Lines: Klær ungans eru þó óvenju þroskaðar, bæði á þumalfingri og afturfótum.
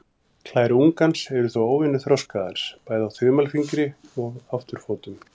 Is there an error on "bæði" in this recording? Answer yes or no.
no